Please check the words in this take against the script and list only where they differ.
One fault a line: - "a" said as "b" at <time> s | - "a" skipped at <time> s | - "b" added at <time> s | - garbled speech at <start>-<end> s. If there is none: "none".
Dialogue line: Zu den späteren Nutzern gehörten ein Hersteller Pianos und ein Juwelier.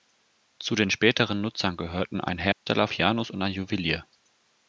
none